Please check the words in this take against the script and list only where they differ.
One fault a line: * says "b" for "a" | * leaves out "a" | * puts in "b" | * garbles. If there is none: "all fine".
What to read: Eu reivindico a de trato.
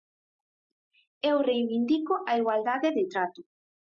* puts in "igualdade"